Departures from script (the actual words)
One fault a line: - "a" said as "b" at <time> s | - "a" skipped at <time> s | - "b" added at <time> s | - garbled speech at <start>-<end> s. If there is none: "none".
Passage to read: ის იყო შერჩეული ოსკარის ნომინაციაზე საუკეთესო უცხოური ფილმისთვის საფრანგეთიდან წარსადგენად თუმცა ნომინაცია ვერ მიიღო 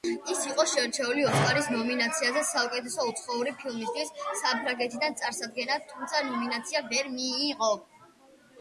none